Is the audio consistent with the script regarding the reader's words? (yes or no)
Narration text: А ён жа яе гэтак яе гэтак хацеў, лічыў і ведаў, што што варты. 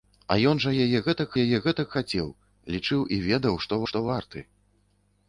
yes